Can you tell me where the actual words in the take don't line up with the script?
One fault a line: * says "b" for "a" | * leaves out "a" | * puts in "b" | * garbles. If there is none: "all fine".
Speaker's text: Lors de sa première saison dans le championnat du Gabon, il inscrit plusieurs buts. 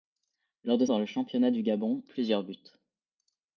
* leaves out "sa première saison"
* leaves out "il inscrit"